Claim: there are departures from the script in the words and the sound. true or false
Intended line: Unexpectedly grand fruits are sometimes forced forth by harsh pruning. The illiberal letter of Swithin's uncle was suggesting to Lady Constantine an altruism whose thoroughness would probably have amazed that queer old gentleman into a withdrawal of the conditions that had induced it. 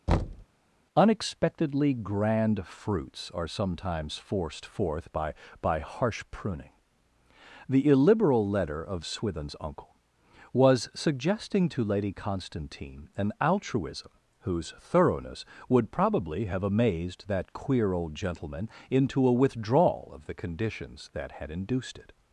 true